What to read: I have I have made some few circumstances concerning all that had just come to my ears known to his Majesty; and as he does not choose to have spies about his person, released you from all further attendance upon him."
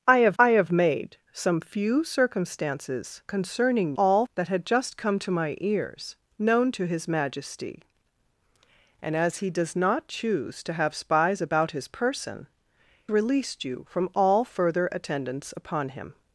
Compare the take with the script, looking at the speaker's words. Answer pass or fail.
pass